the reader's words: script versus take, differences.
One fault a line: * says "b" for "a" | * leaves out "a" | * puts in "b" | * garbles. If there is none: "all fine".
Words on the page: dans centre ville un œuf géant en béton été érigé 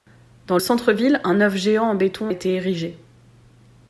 all fine